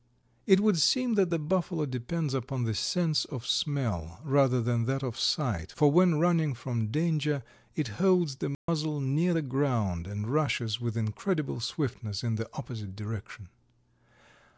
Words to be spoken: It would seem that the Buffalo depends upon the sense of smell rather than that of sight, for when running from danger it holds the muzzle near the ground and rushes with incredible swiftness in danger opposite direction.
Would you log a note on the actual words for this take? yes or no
yes